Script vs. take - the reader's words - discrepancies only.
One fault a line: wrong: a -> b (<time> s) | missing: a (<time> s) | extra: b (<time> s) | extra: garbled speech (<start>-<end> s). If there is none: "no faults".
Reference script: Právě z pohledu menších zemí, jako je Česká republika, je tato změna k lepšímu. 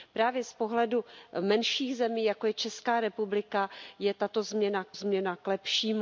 extra: změna k (4.9 s)